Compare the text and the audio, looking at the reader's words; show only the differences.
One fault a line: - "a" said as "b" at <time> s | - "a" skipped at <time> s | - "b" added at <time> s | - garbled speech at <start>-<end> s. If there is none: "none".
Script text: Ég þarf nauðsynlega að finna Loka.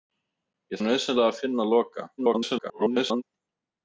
- "þarf" skipped at 0.8 s
- garbled speech at 2.2-3.2 s